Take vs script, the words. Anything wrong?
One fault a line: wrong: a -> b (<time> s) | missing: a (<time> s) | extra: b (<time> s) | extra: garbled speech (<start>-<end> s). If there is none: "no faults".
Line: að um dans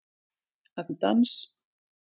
no faults